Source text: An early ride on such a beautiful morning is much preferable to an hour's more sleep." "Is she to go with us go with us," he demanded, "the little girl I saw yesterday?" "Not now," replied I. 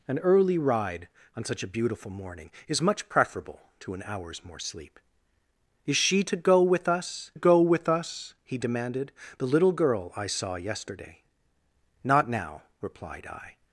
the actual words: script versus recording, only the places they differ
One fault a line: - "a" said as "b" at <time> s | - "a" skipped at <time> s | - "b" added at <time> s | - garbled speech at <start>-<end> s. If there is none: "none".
none